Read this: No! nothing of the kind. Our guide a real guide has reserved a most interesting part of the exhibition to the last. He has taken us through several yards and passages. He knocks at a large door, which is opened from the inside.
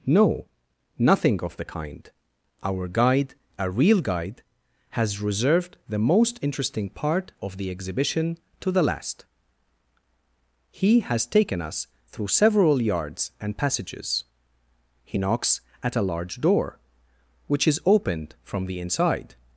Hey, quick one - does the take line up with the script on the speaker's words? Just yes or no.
no